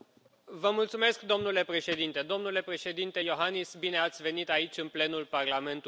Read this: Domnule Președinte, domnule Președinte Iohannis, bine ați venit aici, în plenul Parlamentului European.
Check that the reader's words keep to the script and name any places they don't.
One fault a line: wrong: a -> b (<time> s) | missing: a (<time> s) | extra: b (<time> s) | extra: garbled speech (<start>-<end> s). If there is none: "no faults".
no faults